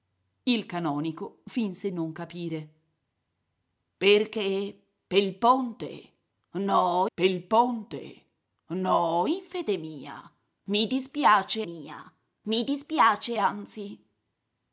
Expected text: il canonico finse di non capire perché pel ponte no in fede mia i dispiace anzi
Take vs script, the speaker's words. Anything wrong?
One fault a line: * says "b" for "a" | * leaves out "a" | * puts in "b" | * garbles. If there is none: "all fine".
* leaves out "di"
* puts in "pel ponte no"
* puts in "mia i dispiace"